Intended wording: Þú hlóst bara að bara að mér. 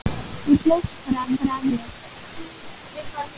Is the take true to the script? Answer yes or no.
yes